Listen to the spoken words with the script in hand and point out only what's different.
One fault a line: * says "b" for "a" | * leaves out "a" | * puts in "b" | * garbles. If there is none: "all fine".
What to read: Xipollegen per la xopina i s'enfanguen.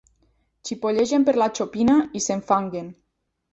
all fine